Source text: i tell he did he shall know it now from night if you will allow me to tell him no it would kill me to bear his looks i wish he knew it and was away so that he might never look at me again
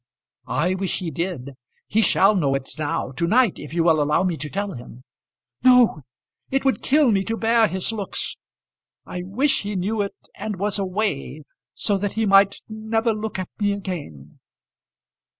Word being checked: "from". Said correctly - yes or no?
no